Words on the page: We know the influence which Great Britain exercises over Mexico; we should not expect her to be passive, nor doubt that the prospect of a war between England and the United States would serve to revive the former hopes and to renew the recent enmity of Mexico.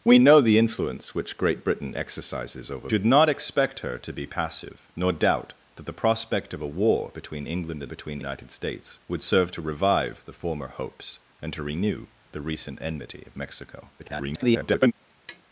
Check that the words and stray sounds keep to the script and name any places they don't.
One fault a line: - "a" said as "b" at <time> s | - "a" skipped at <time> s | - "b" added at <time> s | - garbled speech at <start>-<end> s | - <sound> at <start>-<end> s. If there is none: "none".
- "Mexico we" skipped at 2.9 s
- "the" said as "between" at 7.9 s
- garbled speech at 14.0-14.9 s
- tap at 15.3-15.4 s